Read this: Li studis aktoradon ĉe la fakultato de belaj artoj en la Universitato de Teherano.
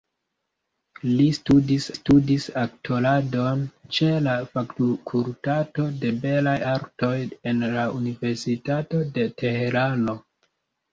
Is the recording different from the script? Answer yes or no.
yes